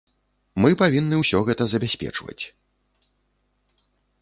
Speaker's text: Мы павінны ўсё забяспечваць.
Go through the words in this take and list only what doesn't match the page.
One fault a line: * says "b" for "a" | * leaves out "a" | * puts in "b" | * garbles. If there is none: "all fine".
* puts in "гэта"